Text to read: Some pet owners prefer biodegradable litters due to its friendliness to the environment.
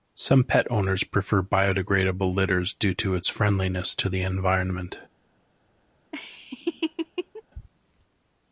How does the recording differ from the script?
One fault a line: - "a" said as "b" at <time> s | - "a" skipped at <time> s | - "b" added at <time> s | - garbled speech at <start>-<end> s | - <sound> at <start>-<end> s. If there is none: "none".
- laugh at 6.1-7.4 s